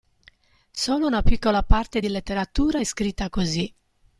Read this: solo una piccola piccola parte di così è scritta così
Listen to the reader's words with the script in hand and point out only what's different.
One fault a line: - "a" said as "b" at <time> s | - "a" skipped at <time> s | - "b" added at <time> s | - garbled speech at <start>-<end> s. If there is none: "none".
- "piccola" skipped at 1.6 s
- "così" said as "letteratura" at 2.1 s